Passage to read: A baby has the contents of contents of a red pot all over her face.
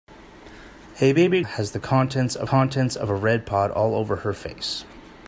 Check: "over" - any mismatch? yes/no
no